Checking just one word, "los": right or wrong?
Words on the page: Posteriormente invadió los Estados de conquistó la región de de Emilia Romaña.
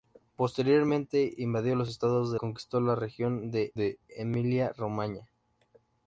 right